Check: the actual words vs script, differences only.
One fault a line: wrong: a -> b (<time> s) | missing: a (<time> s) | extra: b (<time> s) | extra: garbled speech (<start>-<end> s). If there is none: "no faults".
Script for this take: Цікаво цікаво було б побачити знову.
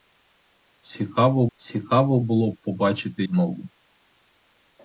no faults